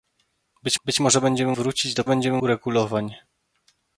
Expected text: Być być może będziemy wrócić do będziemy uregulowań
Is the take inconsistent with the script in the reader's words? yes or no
no